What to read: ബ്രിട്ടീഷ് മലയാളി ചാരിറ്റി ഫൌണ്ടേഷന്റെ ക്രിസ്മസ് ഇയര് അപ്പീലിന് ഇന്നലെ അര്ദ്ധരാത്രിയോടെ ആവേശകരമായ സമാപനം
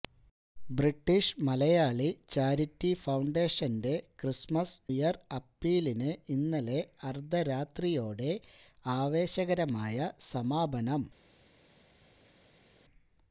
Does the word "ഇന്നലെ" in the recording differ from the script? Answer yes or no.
no